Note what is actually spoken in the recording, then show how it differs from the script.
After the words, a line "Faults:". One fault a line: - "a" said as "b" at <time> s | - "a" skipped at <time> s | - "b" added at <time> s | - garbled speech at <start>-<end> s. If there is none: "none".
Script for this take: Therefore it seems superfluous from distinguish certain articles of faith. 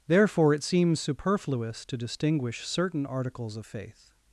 Therefore it seems superfluous to distinguish certain articles of faith.
Faults:
- "from" said as "to" at 1.9 s